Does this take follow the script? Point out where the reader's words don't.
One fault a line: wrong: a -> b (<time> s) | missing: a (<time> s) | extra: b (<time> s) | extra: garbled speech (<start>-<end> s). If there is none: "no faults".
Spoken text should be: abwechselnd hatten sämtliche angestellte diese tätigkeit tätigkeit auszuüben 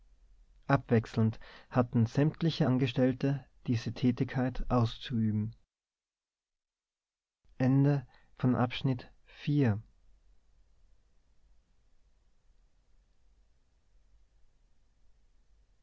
missing: tätigkeit (4.7 s)